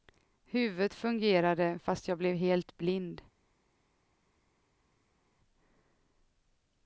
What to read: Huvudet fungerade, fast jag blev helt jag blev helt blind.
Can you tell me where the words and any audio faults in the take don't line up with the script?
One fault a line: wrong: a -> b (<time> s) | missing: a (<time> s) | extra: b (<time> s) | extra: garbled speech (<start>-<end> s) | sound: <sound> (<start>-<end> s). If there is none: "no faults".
missing: jag blev helt (2.8 s)